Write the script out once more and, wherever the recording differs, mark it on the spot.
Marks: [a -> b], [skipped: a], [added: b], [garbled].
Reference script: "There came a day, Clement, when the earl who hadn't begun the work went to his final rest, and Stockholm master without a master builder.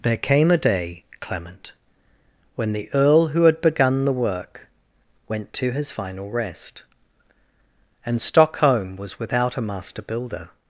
"There came a day, Clement, when the earl who [hadn't -> had] begun the work went to his final rest, and Stockholm [master -> was] without a master builder.